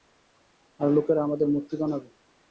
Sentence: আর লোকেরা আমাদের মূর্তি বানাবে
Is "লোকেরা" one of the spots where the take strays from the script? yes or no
no